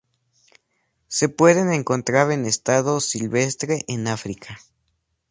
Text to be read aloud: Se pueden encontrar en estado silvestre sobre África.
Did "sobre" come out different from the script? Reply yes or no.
yes